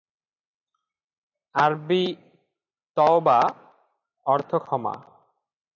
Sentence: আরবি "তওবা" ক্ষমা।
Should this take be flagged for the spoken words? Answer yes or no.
yes